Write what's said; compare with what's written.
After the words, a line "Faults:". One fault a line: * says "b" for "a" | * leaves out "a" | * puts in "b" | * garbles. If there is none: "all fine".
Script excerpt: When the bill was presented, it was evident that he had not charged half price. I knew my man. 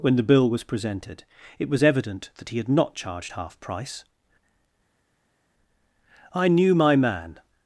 When the bill was presented, it was evident that he had not charged half price. I knew my man.
Faults:
all fine